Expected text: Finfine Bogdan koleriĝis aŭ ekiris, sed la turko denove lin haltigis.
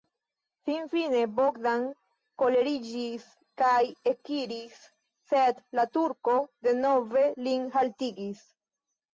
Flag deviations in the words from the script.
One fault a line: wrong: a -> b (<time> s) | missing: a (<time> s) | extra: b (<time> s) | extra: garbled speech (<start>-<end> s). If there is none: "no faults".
wrong: aŭ -> kaj (3.6 s)